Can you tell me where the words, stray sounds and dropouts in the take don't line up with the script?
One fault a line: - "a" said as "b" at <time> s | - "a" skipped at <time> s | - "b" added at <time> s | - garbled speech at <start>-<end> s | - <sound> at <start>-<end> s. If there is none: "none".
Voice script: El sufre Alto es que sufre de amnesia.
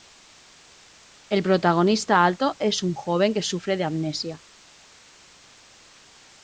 - "sufre" said as "protagonista" at 1.4 s
- "un joven" added at 2.8 s